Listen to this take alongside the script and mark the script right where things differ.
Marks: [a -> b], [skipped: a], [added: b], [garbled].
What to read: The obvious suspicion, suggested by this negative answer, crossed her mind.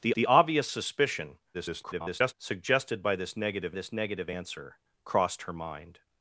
The [added: the] obvious suspicion, [garbled] suggested by this negative [added: this negative] answer, crossed her mind.